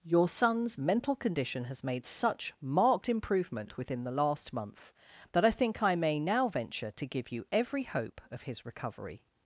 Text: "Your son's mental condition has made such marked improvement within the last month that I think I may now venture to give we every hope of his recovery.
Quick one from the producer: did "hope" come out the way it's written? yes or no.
yes